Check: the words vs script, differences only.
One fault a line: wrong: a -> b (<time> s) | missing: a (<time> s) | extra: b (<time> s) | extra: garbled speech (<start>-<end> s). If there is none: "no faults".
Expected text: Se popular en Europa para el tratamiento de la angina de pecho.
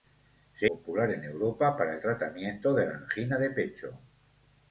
no faults